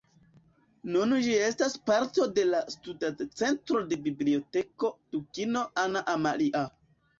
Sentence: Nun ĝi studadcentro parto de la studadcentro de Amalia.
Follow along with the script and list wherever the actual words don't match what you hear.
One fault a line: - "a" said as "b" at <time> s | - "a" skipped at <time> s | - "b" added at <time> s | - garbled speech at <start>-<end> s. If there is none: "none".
- "studadcentro" said as "estas" at 1.5 s
- "Biblioteko Dukino Anna" added at 4.1 s